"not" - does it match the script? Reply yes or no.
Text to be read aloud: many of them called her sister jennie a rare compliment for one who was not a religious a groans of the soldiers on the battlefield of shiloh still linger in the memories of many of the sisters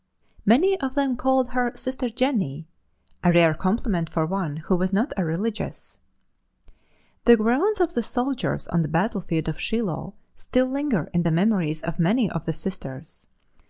yes